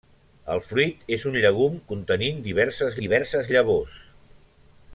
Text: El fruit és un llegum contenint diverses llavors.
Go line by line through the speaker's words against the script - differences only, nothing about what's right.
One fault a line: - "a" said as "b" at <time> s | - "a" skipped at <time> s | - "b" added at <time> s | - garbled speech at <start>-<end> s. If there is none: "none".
- "diverses" added at 3.0 s